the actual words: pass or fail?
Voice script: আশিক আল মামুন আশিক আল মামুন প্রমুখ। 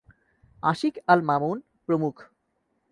fail